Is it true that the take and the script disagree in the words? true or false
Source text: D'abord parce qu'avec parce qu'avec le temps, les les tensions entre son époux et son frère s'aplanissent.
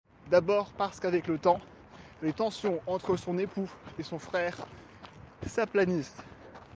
true